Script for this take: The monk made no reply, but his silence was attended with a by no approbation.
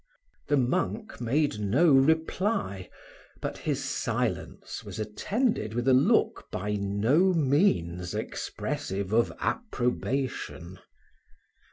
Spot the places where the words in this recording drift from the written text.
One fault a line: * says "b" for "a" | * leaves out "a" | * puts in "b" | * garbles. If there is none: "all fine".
* puts in "look"
* puts in "means expressive of"